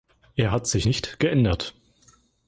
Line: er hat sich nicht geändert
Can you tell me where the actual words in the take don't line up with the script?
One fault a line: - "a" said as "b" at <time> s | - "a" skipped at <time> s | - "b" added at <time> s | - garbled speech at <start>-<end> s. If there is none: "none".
none